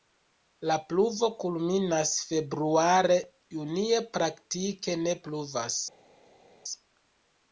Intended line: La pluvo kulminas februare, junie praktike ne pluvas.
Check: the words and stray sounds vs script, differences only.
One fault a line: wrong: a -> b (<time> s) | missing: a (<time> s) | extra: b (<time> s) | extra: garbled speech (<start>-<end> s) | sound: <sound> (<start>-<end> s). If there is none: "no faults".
no faults